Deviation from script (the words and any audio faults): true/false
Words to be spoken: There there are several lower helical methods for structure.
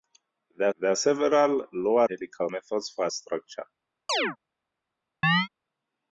true